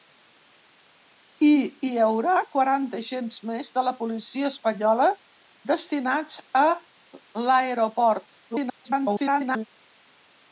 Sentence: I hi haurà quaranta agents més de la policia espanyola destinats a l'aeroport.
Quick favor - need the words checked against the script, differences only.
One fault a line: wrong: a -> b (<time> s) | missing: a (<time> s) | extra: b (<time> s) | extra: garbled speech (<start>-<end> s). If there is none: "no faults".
extra: garbled speech (8.5-9.7 s)